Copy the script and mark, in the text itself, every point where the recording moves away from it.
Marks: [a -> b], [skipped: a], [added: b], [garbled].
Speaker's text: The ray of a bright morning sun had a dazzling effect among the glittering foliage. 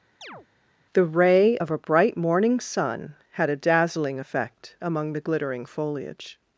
The ray of a bright morning sun had a dazzling effect among the glittering foliage.